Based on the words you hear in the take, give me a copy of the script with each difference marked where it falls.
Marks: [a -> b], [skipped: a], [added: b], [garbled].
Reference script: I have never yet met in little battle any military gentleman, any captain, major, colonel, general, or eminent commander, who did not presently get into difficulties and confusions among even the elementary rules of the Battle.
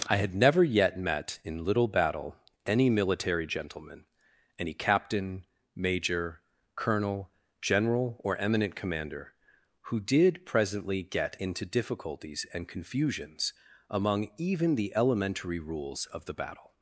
I [have -> had] never yet met in little battle any military gentleman, any captain, major, colonel, general, or eminent commander, who did [skipped: not] presently get into difficulties and confusions among even the elementary rules of the Battle.